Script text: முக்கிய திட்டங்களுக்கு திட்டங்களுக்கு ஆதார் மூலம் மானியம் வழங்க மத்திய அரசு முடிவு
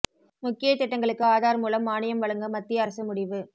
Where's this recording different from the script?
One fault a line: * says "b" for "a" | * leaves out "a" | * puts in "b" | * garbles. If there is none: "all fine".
* leaves out "திட்டங்களுக்கு"